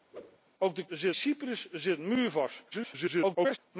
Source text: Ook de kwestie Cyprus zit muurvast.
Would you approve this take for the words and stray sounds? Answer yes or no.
no